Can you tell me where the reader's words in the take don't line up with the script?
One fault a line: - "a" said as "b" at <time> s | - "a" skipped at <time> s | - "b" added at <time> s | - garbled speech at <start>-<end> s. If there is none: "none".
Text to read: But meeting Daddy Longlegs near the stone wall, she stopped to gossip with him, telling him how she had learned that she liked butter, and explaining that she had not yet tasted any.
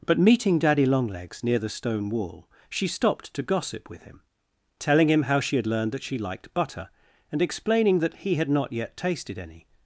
- "she" said as "he" at 8.2 s